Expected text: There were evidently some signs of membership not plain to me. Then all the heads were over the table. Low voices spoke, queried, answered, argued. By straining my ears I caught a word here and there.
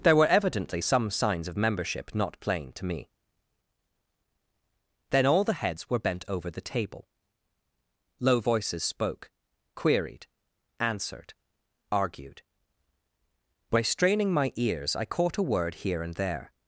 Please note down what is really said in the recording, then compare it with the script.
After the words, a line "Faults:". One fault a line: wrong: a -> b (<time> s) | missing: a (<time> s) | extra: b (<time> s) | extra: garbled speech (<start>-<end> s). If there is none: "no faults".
There were evidently some signs of membership not plain to me. Then all the heads were bent over the table. Low voices spoke, queried, answered, argued. By straining my ears I caught a word here and there.
Faults:
extra: bent (6.0 s)